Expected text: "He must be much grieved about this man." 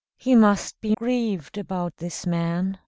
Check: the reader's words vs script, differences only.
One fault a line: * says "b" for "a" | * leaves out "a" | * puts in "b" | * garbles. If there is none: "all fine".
* leaves out "much"